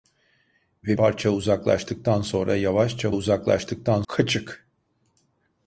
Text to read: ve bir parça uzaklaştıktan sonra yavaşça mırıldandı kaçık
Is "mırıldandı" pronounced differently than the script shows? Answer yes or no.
yes